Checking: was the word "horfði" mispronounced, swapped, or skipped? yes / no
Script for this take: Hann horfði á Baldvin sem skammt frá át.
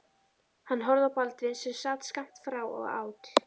no